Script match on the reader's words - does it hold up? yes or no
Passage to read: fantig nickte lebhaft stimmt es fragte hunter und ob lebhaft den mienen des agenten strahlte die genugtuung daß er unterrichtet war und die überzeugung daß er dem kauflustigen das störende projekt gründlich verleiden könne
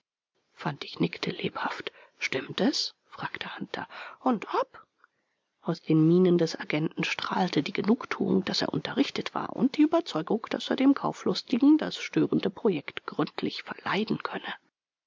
no